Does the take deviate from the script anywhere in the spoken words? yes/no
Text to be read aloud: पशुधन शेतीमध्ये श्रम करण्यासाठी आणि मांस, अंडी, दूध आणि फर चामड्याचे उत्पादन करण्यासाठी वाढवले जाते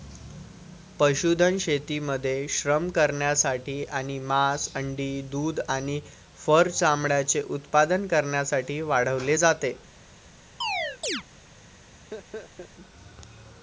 no